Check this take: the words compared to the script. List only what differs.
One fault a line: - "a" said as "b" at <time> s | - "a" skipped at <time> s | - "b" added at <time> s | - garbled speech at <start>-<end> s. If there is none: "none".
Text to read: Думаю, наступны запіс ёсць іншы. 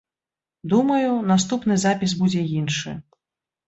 - "ёсць" said as "будзе" at 2.2 s